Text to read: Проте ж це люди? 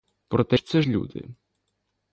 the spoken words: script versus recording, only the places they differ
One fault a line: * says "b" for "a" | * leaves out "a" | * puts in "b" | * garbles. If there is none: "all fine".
all fine